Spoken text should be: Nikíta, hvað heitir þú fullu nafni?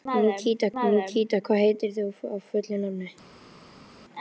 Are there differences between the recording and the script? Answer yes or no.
yes